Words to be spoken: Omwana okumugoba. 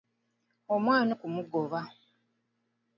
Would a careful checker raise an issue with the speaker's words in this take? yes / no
no